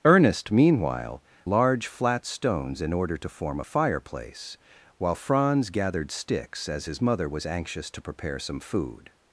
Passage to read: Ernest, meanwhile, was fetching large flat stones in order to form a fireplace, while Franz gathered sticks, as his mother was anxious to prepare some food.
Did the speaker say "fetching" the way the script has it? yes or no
no